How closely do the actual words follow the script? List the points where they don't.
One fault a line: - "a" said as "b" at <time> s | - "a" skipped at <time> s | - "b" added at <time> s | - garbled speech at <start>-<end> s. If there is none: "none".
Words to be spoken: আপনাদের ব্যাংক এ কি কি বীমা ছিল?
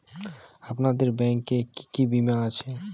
- "ছিল" said as "আছে" at 2.5 s